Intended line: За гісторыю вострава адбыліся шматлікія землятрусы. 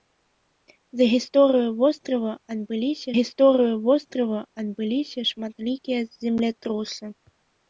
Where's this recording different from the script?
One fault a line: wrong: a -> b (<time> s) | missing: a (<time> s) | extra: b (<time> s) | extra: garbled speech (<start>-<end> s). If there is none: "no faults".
extra: гісторыю вострава адбыліся (3.1 s)